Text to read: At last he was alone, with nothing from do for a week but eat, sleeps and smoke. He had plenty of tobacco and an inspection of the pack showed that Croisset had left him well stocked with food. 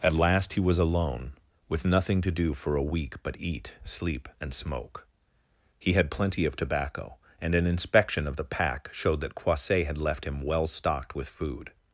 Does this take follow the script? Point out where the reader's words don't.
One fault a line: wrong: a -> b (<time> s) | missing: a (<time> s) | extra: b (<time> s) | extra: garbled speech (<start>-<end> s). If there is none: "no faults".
wrong: from -> to (2.2 s)
wrong: sleeps -> sleep (3.8 s)